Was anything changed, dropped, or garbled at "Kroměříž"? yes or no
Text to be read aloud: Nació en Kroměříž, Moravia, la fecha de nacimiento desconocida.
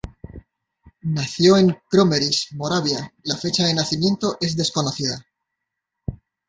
no